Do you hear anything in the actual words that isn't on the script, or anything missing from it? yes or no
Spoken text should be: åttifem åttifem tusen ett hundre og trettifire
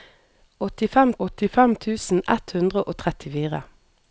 no